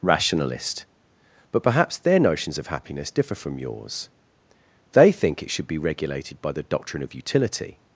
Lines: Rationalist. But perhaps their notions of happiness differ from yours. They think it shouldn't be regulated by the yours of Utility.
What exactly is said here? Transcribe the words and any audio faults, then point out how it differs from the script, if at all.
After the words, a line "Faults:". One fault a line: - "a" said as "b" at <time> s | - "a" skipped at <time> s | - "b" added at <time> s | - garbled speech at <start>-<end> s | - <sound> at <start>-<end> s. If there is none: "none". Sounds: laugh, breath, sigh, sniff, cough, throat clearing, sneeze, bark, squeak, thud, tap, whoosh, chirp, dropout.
Rationalist. But perhaps their notions of happiness differ from yours. They think it should be regulated by the doctrine of Utility.
Faults:
- "shouldn't" said as "should" at 5.5 s
- "yours" said as "doctrine" at 6.6 s